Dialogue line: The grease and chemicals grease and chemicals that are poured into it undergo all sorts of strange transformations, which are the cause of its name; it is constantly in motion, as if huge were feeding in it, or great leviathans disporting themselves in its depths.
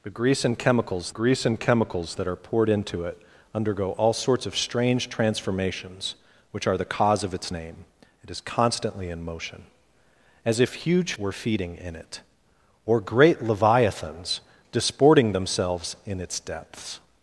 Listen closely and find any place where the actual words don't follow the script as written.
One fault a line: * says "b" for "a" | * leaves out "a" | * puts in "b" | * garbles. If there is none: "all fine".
all fine